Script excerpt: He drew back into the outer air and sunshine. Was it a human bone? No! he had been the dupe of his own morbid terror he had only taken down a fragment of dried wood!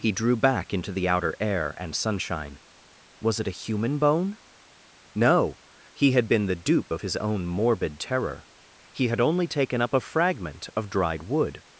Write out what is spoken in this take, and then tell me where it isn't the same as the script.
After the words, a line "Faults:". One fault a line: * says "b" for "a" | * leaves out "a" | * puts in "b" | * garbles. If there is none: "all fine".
He drew back into the outer air and sunshine. Was it a human bone? No! he had been the dupe of his own morbid terror he had only taken up a fragment of dried wood!
Faults:
* says "up" for "down"